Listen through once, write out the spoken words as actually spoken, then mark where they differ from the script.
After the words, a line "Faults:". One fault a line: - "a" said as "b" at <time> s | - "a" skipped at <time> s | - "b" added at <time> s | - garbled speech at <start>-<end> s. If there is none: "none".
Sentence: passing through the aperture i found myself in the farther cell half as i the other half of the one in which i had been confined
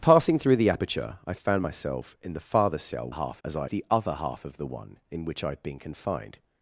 passing through the aperture i found myself in the farther cell half as i the other half of the one in which i had been confined
Faults:
none